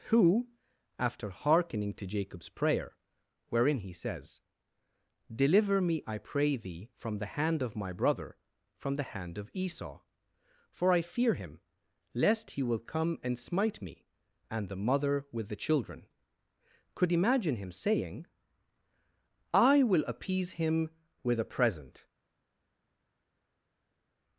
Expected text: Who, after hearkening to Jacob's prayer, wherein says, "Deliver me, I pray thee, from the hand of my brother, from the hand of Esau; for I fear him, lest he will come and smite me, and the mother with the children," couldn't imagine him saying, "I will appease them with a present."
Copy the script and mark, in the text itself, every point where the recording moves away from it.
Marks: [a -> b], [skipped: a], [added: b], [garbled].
Who, after hearkening to Jacob's prayer, wherein [added: he] says, "Deliver me, I pray thee, from the hand of my brother, from the hand of Esau; for I fear him, lest he will come and smite me, and the mother with the children," [couldn't -> could] imagine him saying, "I will appease [them -> him] with a present."